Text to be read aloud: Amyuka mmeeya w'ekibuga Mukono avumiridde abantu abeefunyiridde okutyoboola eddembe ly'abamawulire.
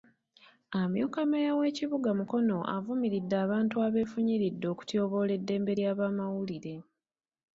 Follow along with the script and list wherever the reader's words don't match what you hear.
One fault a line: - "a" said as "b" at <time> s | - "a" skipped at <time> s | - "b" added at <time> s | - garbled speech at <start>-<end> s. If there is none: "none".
none